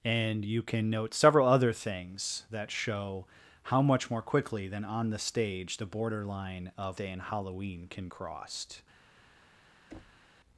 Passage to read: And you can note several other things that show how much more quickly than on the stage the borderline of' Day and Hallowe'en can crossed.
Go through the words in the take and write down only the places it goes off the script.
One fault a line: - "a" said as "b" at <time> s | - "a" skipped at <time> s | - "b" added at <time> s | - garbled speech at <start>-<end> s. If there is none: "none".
none